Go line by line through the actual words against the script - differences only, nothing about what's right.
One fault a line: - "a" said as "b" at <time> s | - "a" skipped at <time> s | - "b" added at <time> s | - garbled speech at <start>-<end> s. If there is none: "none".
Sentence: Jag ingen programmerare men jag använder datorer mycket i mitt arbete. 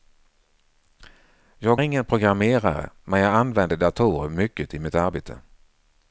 none